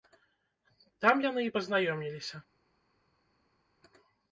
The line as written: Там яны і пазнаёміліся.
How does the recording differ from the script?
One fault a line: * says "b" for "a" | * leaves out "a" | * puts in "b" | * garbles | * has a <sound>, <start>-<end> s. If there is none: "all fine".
all fine